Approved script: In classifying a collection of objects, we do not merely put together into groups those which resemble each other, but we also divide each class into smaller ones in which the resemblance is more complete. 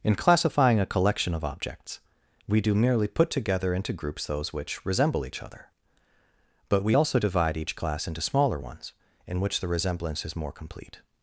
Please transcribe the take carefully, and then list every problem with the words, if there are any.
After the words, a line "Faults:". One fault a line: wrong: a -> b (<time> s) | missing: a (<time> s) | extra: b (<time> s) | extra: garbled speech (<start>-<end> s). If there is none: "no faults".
In classifying a collection of objects, we do merely put together into groups those which resemble each other, but we also divide each class into smaller ones in which the resemblance is more complete.
Faults:
missing: not (2.7 s)